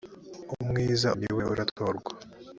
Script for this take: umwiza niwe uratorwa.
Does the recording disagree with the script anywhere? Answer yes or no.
no